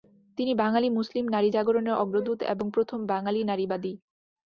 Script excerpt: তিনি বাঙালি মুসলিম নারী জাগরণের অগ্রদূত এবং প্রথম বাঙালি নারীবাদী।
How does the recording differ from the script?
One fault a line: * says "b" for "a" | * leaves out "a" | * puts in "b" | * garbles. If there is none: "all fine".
all fine